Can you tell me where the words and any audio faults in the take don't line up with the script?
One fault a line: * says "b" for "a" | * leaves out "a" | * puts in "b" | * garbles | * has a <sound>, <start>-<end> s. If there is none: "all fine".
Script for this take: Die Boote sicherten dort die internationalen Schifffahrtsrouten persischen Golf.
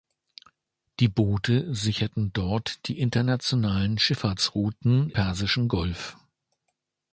all fine